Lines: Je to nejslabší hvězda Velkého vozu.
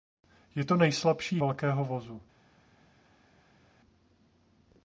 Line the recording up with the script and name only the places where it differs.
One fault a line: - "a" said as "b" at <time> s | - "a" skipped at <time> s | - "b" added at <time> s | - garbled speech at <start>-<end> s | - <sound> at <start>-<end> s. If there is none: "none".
- "hvězda" skipped at 1.4 s